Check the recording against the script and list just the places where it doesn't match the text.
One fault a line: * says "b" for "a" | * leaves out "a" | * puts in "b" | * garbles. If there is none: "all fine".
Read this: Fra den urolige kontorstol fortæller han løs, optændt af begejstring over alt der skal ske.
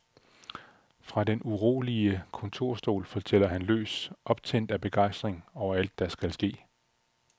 all fine